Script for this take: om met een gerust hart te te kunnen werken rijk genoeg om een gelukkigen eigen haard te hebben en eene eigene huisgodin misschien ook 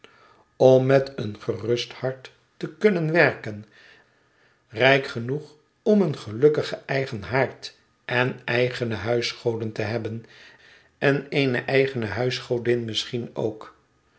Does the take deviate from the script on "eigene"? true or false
false